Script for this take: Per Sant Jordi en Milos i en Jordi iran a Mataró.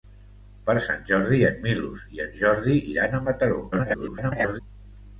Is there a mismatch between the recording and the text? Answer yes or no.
yes